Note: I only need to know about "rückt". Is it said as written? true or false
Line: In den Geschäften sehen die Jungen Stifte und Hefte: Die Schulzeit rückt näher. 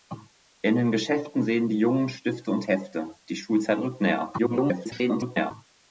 true